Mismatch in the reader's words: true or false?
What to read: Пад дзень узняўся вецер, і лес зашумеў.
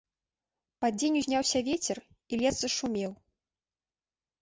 false